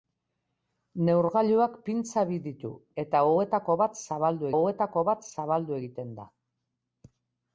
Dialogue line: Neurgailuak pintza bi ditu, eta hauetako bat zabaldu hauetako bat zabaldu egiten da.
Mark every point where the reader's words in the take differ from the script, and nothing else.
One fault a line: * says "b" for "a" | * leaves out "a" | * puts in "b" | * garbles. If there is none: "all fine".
all fine